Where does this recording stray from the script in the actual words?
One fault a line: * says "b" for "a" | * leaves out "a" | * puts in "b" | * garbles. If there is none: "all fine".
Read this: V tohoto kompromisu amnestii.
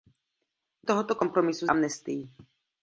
all fine